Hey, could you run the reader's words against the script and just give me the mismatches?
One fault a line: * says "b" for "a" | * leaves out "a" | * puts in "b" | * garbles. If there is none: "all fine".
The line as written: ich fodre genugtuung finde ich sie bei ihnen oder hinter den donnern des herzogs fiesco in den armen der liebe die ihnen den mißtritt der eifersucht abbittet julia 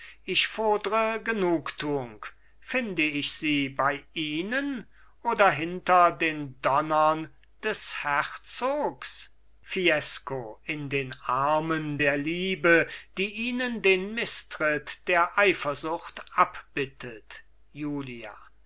all fine